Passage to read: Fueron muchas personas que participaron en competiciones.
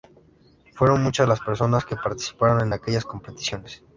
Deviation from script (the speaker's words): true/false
true